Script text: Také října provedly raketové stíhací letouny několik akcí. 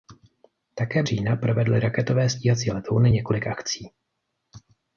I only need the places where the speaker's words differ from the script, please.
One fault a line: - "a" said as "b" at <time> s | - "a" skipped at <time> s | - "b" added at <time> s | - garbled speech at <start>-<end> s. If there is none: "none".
none